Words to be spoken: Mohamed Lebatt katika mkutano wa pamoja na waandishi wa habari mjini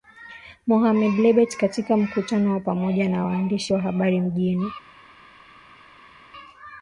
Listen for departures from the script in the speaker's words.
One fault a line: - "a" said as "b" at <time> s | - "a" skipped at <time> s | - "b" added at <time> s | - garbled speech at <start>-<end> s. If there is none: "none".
none